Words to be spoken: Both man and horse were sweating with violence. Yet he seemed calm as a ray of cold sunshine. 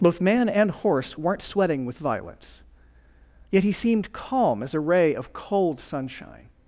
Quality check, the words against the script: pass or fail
fail